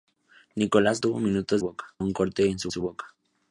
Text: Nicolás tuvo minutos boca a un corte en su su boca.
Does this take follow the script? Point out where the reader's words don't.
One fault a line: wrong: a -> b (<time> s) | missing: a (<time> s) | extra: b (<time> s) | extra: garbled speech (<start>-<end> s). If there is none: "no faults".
no faults